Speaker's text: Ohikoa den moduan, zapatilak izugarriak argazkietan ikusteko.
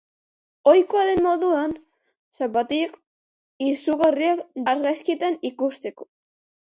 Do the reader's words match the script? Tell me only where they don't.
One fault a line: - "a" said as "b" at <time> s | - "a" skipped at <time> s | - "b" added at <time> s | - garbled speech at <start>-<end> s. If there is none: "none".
none